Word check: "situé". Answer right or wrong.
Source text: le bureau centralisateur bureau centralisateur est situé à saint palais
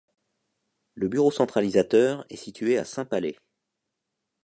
right